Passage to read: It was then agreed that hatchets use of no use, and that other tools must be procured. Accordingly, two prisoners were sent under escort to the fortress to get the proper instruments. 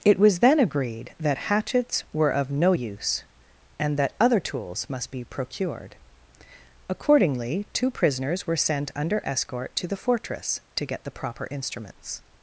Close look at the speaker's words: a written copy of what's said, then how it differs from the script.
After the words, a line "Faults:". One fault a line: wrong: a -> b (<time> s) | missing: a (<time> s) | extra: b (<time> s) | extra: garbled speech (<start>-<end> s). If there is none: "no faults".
It was then agreed that hatchets were of no use, and that other tools must be procured. Accordingly, two prisoners were sent under escort to the fortress to get the proper instruments.
Faults:
wrong: use -> were (2.1 s)